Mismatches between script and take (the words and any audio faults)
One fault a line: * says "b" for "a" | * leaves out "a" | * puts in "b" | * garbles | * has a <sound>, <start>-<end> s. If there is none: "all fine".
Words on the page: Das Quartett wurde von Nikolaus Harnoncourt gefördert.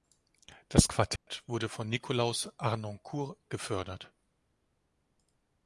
* has a dropout, 1.2-1.3 s